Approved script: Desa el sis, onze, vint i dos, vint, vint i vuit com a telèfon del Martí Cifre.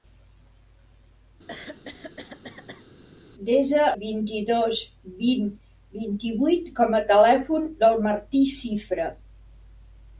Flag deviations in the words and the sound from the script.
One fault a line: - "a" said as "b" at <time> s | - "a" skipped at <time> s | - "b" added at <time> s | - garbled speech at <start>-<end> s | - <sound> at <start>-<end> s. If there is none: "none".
- throat clearing at 1.5-2.9 s
- "el sis onze" skipped at 3.9 s